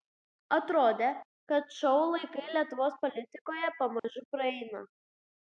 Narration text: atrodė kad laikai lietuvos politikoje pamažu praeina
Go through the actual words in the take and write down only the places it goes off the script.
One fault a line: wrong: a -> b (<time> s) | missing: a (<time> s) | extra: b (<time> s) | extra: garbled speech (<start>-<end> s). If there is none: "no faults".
extra: šou (1.8 s)